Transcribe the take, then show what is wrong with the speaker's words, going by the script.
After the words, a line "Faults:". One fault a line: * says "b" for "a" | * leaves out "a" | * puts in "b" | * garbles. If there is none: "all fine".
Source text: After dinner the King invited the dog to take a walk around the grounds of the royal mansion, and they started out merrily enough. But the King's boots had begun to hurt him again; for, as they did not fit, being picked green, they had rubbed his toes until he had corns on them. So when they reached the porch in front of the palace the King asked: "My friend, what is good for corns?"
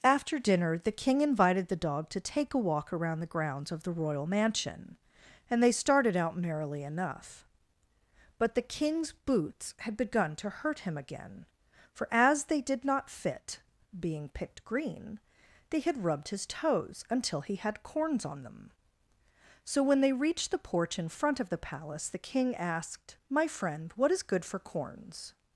After dinner the King invited the dog to take a walk around the grounds of the royal mansion, and they started out merrily enough. But the King's boots had begun to hurt him again; for, as they did not fit, being picked green, they had rubbed his toes until he had corns on them. So when they reached the porch in front of the palace the King asked: "My friend, what is good for corns?"
Faults:
all fine